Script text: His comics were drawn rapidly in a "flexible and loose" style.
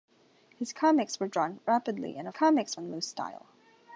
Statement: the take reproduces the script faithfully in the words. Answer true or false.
false